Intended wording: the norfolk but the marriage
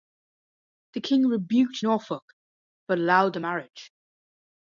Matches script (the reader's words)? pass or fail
fail